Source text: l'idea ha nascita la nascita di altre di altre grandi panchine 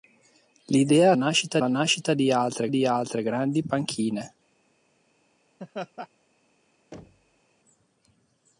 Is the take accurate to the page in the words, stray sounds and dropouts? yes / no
no